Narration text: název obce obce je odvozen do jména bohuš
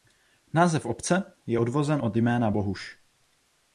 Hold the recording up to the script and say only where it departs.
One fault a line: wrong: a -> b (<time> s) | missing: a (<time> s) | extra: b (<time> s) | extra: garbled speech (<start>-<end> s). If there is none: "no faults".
missing: obce (1.2 s)
wrong: do -> od (2.0 s)